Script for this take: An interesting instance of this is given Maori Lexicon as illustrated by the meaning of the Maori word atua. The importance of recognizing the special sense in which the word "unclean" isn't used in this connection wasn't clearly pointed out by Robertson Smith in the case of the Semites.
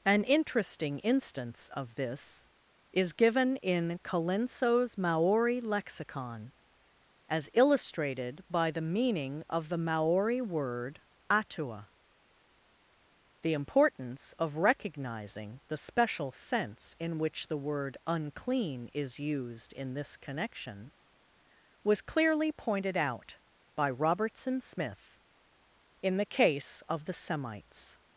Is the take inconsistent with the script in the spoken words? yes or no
yes